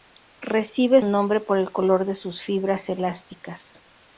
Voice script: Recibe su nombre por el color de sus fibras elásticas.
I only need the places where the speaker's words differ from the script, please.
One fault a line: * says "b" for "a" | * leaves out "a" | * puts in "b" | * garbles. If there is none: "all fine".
* leaves out "su"